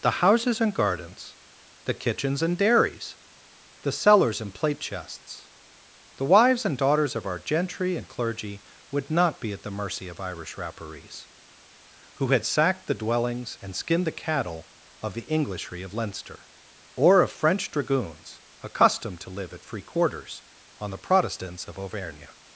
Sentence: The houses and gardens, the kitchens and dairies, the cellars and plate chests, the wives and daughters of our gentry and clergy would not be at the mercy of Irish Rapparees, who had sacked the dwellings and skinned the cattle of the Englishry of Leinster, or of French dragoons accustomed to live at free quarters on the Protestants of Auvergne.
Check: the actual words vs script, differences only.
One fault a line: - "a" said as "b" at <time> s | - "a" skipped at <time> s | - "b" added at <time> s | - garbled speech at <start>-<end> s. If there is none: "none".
none